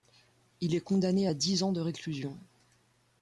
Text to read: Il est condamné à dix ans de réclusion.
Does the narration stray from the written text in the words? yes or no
no